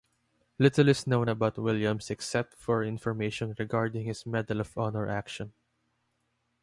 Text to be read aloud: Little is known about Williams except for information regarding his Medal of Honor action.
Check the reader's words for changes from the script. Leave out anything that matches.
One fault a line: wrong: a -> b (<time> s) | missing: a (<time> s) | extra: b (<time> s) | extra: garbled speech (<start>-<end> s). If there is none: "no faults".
no faults